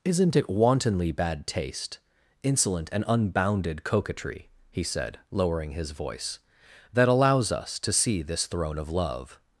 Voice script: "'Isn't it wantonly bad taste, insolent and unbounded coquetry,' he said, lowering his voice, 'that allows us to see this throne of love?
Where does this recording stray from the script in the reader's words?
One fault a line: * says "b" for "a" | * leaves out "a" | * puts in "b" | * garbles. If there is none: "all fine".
all fine